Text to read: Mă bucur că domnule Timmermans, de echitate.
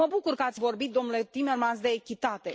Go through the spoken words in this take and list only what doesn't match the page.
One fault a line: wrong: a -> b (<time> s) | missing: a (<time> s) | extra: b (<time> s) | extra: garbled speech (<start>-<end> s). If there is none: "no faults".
extra: ați vorbit (0.4 s)